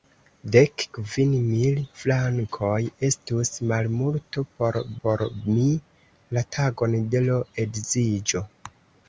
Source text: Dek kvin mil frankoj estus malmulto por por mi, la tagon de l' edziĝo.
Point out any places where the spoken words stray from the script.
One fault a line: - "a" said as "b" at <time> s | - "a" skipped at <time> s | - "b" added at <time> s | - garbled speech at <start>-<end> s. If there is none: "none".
none